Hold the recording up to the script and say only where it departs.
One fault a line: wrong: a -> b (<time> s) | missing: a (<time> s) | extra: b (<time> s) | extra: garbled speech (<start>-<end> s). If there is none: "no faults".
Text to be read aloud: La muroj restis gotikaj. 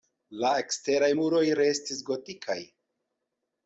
extra: eksteraj (0.6 s)